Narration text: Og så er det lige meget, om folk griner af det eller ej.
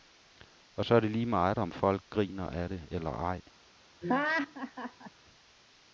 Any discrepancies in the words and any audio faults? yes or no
yes